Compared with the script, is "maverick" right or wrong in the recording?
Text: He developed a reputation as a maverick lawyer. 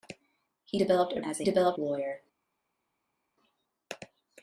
wrong